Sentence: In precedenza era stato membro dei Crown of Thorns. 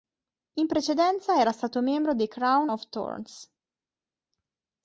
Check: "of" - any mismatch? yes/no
no